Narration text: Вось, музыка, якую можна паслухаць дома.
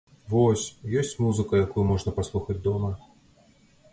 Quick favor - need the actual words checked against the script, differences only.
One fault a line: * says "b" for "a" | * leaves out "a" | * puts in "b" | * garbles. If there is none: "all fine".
* puts in "ёсць"